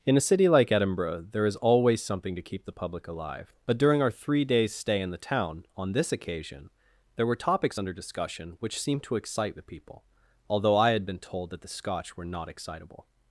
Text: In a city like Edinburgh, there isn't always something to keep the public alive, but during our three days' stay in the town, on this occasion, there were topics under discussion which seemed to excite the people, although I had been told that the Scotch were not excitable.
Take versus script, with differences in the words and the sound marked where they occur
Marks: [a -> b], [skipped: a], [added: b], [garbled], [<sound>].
In a city like Edinburgh, there [isn't -> is] always something to keep the public alive, but during our three days' stay in the town, on this occasion, there were topics under discussion which seemed to excite the people, although I had been told that the Scotch were not excitable.